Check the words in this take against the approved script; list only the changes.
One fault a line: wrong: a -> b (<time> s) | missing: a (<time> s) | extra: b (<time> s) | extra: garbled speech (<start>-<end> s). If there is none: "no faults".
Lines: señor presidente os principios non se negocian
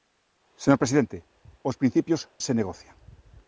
missing: non (2.2 s)